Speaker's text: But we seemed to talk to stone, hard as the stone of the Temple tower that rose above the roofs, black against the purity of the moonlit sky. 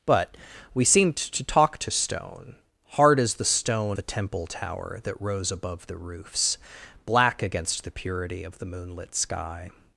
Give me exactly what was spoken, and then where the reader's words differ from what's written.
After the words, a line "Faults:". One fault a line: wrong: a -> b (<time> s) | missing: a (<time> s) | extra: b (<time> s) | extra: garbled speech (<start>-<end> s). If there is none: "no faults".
But we seemed to talk to stone, hard as the stone the Temple tower that rose above the roofs, black against the purity of the moonlit sky.
Faults:
missing: of (4.0 s)